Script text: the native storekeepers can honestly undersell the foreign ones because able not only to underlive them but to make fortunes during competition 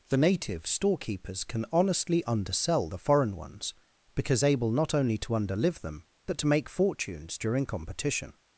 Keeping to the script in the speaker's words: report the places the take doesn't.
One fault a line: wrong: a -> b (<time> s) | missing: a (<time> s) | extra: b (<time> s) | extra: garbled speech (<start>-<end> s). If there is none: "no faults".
no faults